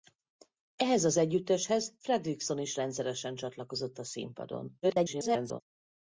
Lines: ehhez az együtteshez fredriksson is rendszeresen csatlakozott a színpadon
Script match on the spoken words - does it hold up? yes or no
no